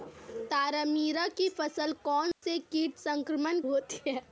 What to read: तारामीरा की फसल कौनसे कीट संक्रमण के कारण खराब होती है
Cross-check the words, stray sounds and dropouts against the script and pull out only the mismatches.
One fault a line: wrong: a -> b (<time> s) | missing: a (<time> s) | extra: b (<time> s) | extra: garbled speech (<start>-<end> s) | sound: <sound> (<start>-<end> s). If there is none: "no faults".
sound: dropout (2.3-2.4 s)
missing: के कारण खराब (3.6 s)